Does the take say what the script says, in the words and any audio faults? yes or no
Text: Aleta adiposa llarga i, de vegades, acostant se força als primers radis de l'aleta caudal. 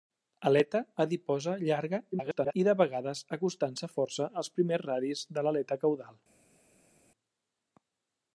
no